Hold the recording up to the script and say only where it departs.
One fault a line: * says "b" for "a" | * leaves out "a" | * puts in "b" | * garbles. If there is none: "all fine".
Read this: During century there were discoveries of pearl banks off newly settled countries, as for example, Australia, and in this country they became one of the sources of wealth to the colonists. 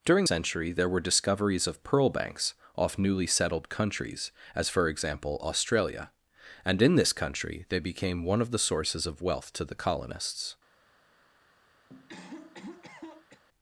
all fine